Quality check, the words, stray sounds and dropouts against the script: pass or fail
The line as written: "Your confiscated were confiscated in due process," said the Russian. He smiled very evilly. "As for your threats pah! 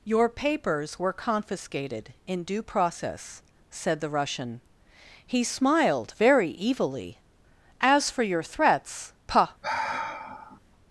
fail